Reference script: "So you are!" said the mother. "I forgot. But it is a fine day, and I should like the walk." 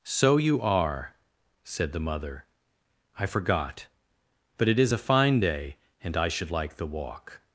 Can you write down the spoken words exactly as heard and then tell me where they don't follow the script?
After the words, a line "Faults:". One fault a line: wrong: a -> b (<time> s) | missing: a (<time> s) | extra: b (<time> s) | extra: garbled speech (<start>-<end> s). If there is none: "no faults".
"So you are!" said the mother. "I forgot. But it is a fine day, and I should like the walk."
Faults:
no faults